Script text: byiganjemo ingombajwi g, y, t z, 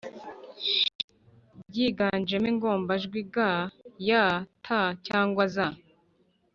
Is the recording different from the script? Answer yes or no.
yes